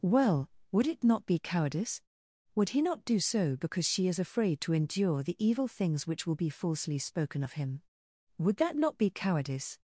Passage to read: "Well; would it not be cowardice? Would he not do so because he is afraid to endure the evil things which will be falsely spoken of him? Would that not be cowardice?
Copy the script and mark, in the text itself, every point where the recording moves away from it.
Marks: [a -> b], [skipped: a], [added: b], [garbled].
"Well; would it not be cowardice? Would he not do so because [he -> she] is afraid to endure the evil things which will be falsely spoken of him? Would that not be cowardice?